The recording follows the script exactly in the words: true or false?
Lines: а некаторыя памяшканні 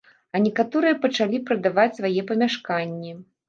false